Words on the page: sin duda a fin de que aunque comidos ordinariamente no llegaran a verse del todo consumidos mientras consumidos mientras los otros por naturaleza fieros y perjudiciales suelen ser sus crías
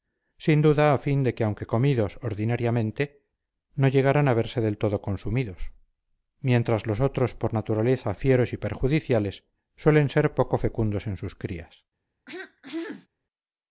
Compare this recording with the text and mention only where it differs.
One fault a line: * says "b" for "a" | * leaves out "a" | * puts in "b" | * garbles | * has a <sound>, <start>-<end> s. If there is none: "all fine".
* leaves out "consumidos mientras"
* puts in "poco fecundos en"
* has a throat clearing, 12.3-13.1 s